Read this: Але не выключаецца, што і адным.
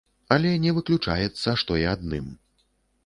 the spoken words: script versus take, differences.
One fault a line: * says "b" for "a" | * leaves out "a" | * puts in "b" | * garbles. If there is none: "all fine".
all fine